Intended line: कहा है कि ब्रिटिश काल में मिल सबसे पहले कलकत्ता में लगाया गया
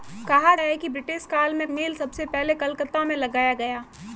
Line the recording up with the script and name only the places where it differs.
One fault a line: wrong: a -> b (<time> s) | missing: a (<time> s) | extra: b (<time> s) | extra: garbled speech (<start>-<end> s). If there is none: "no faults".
no faults